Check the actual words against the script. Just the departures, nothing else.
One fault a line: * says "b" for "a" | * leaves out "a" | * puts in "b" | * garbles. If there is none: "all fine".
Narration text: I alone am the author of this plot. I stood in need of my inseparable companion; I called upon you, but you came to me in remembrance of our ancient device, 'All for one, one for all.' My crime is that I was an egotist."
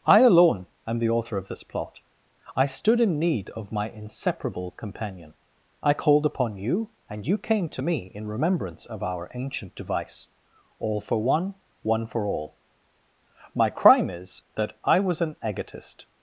* says "and" for "but"